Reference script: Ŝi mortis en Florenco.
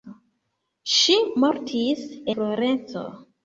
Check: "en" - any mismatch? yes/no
yes